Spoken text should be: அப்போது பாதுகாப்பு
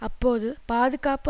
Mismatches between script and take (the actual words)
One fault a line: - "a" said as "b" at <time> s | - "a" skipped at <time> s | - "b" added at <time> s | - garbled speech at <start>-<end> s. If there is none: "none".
none